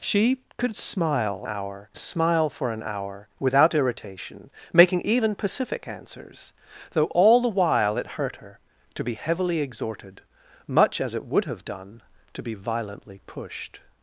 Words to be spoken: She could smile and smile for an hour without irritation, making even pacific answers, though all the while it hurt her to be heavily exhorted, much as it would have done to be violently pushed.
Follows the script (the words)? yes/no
no